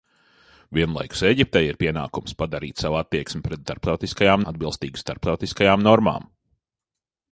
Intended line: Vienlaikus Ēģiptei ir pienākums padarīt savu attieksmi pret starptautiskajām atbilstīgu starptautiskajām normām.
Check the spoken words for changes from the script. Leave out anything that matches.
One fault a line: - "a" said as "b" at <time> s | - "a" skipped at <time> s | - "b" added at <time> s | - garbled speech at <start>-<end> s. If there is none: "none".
none